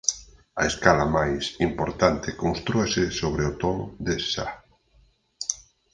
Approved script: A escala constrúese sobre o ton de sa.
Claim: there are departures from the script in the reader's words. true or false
true